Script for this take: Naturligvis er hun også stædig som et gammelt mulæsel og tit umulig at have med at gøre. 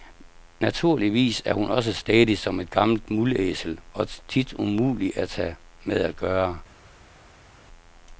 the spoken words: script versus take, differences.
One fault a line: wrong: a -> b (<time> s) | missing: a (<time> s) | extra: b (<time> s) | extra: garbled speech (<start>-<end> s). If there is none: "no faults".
no faults